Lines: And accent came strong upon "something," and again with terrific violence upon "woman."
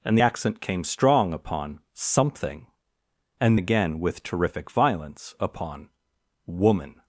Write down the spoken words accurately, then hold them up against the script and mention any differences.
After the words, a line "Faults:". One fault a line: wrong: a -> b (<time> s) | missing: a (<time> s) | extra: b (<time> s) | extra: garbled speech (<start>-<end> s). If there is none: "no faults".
And accent came strong upon "something," and again with terrific violence upon "woman."
Faults:
no faults